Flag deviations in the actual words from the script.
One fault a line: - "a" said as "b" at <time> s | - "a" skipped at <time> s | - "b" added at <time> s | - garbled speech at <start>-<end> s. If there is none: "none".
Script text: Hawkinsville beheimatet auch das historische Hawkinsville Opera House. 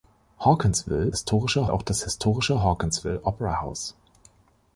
- "beheimatet" said as "historische" at 1.1 s